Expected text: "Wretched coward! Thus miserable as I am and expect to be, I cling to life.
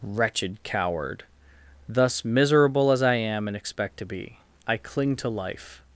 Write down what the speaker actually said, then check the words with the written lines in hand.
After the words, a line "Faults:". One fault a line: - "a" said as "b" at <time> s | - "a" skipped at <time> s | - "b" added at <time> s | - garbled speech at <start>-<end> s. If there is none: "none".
"Wretched coward! Thus miserable as I am and expect to be, I cling to life.
Faults:
none